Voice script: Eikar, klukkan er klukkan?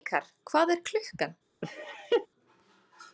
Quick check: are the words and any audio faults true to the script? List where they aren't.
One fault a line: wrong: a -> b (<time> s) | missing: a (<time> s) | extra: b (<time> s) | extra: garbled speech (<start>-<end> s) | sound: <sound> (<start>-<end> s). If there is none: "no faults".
wrong: klukkan -> hvað (0.5 s)
sound: laugh (1.6-2.3 s)